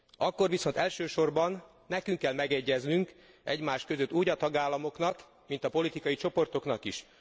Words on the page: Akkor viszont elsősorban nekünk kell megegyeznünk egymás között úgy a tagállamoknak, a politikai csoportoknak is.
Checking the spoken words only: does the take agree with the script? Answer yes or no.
no